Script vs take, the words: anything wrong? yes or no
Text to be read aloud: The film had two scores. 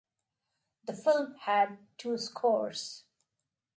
no